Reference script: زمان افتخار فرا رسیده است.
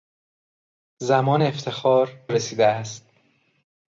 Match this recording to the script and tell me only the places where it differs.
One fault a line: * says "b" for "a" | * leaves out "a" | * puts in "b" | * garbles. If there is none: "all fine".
* leaves out "فرا"